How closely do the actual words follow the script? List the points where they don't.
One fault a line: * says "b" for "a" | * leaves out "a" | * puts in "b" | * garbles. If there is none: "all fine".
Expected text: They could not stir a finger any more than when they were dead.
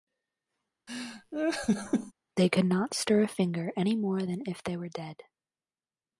* says "if" for "when"